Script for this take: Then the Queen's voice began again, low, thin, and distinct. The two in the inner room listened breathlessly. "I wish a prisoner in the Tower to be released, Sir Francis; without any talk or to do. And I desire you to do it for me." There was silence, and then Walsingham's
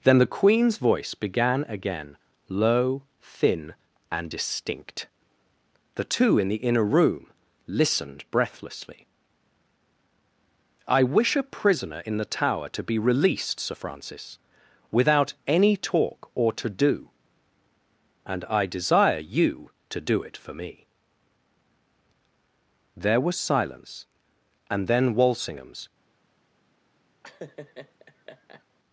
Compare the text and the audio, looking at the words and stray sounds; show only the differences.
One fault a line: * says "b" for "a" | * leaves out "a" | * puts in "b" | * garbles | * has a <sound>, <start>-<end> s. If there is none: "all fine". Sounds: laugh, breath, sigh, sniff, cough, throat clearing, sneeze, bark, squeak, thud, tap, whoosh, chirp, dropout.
* has a laugh, 27.2-28.6 s